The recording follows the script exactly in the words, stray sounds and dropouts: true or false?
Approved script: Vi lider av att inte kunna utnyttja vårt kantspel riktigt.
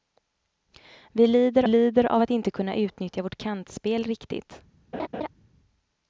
false